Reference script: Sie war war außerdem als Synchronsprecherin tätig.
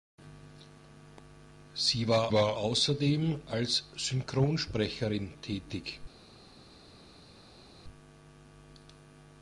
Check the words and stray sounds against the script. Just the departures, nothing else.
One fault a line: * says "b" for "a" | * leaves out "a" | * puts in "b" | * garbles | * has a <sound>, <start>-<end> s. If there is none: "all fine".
all fine